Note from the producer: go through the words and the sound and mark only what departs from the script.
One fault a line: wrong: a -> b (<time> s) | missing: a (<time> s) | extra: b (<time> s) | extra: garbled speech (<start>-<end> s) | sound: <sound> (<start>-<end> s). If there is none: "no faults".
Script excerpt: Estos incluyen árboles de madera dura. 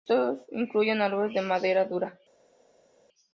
no faults